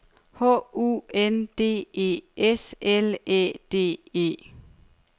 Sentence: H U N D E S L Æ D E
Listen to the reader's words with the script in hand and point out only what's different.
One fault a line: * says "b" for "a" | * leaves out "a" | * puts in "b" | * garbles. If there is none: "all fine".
all fine